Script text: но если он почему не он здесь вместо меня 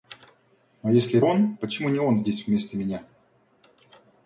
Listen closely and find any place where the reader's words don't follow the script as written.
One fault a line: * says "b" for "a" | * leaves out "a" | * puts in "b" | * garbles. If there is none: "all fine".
all fine